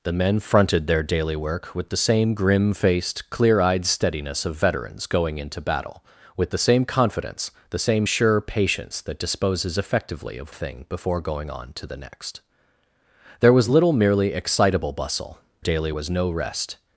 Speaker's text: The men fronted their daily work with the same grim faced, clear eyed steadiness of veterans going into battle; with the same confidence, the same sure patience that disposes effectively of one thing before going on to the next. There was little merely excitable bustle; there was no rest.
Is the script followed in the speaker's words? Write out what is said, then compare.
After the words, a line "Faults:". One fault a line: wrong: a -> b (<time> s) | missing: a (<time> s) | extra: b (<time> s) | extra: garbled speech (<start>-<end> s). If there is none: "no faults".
The men fronted their daily work with the same grim faced, clear eyed steadiness of veterans going into battle; with the same confidence, the same sure patience that disposes effectively of thing before going on to the next. There was little merely excitable bustle; daily was no rest.
Faults:
missing: one (10.5 s)
wrong: there -> daily (15.6 s)